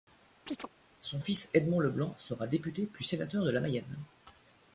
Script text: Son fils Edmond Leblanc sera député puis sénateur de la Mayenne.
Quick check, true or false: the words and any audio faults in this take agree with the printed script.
false